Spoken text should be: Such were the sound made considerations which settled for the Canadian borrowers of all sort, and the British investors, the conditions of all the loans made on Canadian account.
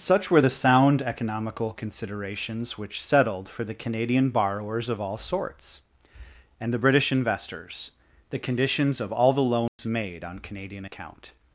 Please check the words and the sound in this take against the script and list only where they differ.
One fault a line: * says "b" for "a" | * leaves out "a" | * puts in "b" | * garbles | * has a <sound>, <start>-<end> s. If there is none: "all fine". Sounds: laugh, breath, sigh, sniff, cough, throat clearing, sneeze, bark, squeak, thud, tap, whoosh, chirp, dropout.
* says "economical" for "made"
* says "sorts" for "sort"
* has a dropout, 9.7-9.8 s